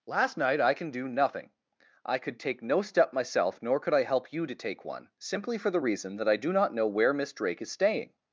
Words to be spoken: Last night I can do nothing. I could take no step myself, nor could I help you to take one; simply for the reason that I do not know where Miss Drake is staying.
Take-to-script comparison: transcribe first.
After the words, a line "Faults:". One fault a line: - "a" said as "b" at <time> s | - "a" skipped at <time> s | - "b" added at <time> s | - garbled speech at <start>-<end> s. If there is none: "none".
Last night I can do nothing. I could take no step myself, nor could I help you to take one; simply for the reason that I do not know where Miss Drake is staying.
Faults:
none